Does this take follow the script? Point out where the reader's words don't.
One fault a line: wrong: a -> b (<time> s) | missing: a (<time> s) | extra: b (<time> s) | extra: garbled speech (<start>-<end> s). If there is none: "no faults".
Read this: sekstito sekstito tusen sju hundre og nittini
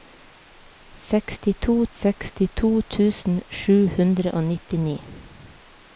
no faults